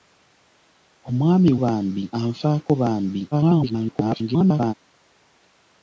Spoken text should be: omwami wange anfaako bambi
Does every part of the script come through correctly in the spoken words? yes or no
no